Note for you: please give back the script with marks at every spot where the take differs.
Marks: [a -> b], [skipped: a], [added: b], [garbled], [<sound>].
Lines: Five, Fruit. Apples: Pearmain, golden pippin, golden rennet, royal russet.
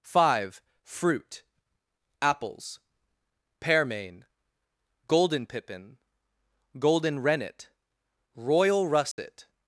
Five, Fruit. Apples: Pearmain, golden pippin, golden rennet, royal russet. [dropout]